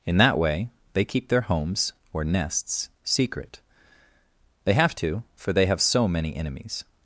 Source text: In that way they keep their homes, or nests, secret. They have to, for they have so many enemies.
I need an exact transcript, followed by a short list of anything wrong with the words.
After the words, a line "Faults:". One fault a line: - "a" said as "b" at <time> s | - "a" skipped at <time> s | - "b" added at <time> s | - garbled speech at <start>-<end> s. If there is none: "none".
In that way they keep their homes, or nests, secret. They have to, for they have so many enemies.
Faults:
none